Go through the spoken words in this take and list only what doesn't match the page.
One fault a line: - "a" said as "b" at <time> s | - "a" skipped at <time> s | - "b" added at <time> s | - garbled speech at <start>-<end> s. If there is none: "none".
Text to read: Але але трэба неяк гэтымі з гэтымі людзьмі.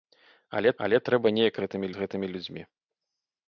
none